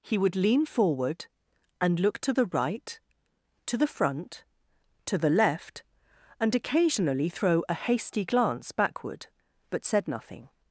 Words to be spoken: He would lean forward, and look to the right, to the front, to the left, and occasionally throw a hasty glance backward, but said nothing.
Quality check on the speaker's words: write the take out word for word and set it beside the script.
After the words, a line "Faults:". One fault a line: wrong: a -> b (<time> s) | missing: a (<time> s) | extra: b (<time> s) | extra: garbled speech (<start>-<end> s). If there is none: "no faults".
He would lean forward, and look to the right, to the front, to the left, and occasionally throw a hasty glance backward, but said nothing.
Faults:
no faults